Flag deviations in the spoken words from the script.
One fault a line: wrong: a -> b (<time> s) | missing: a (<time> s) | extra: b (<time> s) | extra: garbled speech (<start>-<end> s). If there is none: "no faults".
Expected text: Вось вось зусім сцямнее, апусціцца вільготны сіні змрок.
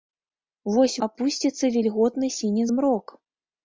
missing: вось зусім сцямнее (0.9 s)